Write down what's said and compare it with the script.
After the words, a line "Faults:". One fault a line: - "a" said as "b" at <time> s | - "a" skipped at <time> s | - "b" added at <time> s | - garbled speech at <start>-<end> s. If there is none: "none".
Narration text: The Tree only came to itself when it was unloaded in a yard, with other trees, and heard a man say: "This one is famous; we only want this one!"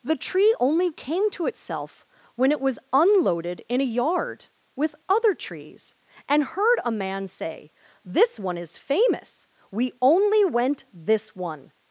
The Tree only came to itself when it was unloaded in a yard, with other trees, and heard a man say: "This one is famous; we only went this one!"
Faults:
- "want" said as "went" at 10.4 s